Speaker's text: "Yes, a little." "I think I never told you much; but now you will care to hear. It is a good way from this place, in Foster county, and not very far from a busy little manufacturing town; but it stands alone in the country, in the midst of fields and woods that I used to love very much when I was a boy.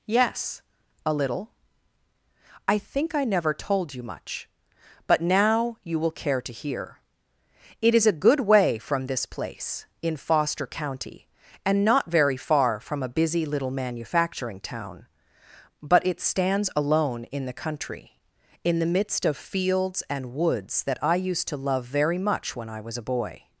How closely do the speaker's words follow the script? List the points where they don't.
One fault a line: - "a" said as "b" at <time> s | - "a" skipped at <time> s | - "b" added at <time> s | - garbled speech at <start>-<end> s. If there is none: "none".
none